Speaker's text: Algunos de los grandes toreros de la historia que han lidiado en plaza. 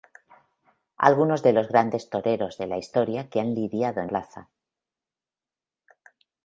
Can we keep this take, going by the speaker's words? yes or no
yes